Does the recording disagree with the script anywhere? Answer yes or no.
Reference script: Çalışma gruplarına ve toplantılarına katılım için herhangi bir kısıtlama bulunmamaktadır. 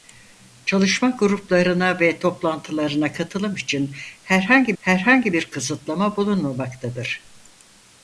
yes